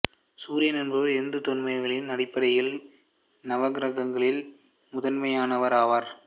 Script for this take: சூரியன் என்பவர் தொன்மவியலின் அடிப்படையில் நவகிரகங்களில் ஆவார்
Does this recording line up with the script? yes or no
no